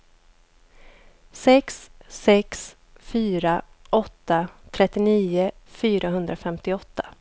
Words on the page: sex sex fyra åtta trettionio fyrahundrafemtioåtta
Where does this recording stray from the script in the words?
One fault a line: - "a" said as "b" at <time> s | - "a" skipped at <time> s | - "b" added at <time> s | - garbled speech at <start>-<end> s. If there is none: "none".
none